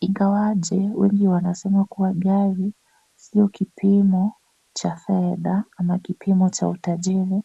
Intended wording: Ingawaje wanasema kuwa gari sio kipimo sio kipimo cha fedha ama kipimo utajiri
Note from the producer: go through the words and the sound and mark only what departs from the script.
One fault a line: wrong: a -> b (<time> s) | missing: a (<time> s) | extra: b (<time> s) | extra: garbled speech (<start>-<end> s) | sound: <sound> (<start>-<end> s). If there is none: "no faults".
extra: wengi (0.9 s)
missing: sio kipimo (4.3 s)
extra: cha (6.5 s)